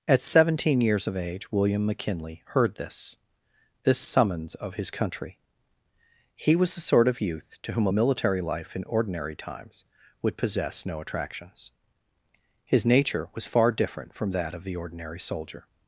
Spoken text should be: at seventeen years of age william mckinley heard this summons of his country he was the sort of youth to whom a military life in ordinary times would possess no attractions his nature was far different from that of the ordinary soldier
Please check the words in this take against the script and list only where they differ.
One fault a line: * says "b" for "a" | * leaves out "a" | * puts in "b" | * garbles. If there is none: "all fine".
* puts in "this"